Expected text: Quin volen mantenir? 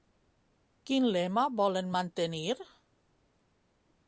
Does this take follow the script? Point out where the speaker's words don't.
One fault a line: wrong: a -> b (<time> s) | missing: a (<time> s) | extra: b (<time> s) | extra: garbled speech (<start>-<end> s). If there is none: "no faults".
extra: lema (1.2 s)